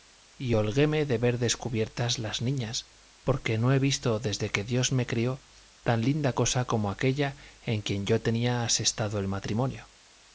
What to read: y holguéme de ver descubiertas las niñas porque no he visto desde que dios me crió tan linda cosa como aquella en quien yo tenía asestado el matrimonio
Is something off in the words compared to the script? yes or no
no